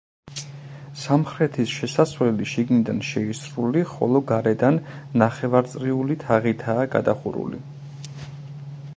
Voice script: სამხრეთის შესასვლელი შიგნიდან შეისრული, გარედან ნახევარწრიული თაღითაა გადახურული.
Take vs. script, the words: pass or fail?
fail